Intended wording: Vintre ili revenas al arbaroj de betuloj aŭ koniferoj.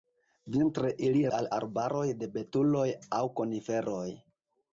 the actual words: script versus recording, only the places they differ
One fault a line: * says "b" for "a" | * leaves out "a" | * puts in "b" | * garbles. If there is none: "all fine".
* leaves out "revenas"